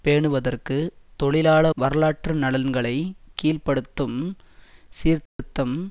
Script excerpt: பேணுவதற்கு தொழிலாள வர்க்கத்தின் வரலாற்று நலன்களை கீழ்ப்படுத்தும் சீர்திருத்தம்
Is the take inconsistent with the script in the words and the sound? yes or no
yes